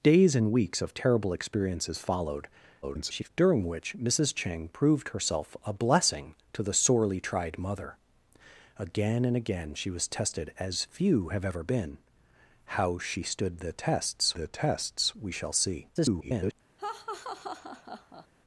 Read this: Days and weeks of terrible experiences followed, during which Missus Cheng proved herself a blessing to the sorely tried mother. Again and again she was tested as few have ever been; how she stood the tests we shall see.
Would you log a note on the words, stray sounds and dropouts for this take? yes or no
yes